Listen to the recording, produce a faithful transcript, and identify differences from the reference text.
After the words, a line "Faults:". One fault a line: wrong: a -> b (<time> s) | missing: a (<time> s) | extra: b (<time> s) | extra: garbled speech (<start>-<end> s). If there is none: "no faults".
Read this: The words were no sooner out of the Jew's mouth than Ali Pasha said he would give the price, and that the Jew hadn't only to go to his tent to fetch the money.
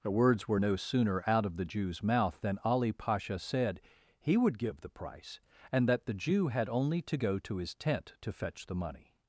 The words were no sooner out of the Jew's mouth than Ali Pasha said he would give the price, and that the Jew had only to go to his tent to fetch the money.
Faults:
wrong: hadn't -> had (6.5 s)